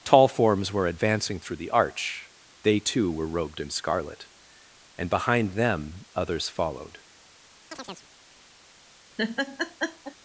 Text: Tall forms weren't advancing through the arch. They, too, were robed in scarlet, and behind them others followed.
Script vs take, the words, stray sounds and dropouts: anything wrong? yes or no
yes